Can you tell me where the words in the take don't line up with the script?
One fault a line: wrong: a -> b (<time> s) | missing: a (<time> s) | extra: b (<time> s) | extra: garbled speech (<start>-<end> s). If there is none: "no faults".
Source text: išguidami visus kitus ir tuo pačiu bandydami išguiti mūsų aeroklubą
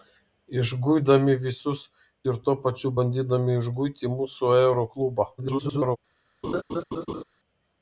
missing: kitus (1.8 s)
extra: garbled speech (5.4-6.0 s)